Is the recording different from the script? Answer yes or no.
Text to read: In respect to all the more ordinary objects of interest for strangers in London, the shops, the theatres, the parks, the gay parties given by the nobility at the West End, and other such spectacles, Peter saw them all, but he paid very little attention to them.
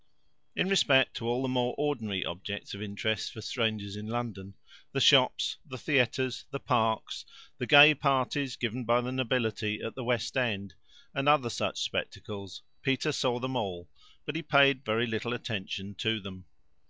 no